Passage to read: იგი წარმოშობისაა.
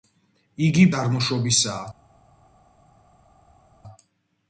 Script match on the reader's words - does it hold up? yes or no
yes